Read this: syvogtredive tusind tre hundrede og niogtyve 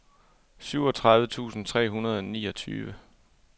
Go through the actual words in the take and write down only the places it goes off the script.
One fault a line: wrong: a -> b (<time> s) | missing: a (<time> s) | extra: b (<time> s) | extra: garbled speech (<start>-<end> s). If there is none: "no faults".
no faults